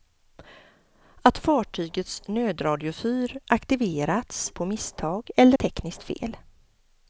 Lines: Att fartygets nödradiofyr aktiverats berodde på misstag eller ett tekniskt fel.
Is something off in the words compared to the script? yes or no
yes